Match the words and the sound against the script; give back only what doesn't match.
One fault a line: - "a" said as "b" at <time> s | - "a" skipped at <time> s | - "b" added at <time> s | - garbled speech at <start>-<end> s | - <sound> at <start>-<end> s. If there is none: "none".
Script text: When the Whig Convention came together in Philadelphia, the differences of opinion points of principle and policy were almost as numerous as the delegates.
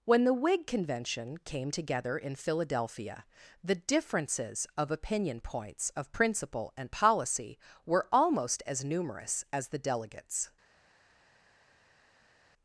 none